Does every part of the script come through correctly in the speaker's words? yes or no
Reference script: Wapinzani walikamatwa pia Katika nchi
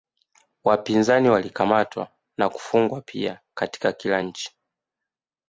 no